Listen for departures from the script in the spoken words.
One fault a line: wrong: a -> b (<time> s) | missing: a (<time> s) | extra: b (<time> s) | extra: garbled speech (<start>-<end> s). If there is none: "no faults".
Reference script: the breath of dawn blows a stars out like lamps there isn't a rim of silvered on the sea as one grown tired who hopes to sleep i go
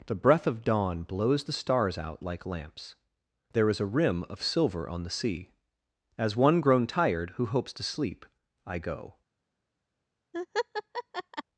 wrong: a -> the (1.4 s)
wrong: isn't -> is (3.7 s)
wrong: silvered -> silver (4.4 s)